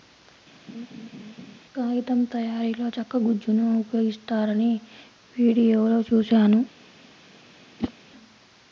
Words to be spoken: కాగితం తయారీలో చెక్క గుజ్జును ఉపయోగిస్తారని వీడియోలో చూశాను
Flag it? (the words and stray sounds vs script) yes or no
yes